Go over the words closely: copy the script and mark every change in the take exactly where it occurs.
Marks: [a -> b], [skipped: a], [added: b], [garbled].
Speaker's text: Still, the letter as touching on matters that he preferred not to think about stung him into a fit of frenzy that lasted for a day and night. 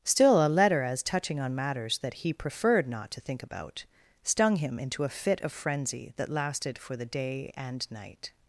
Still, [the -> a] letter as touching on matters that he preferred not to think about stung him into a fit of frenzy that lasted for [a -> the] day and night.